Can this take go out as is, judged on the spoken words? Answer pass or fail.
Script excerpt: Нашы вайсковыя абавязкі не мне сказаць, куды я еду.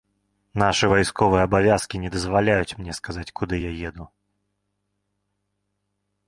fail